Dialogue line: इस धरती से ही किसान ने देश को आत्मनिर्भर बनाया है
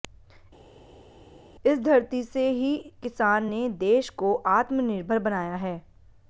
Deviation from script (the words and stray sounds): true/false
false